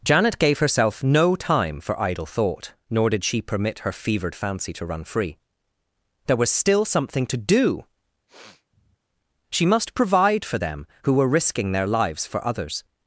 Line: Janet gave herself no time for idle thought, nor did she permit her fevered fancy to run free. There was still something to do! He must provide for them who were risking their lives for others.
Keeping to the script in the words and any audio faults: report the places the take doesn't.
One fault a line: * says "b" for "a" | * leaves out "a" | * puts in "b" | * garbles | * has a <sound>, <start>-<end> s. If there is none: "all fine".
* has a sniff, 8.3-9.0 s
* says "She" for "He"